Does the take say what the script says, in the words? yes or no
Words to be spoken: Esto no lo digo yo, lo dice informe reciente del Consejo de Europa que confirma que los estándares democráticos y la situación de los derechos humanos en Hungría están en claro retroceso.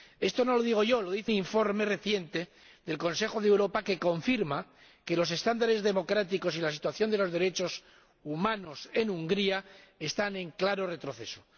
yes